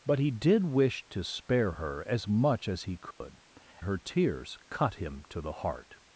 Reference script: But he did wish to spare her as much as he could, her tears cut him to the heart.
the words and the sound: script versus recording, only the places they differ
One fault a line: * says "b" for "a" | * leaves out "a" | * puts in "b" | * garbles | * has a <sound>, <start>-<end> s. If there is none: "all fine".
* has a dropout, 3.1-3.2 s